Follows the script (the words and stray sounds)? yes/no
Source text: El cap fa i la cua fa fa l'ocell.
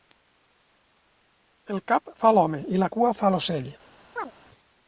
no